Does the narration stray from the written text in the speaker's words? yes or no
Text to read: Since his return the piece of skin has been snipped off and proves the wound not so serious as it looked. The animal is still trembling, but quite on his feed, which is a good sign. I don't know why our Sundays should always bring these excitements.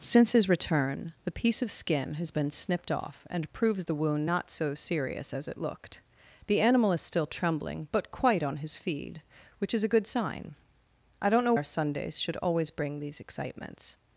yes